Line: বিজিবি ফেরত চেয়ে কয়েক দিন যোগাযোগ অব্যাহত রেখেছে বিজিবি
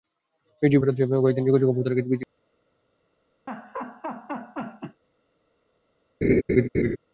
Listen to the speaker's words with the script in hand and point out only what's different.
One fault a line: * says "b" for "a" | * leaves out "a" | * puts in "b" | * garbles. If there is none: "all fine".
all fine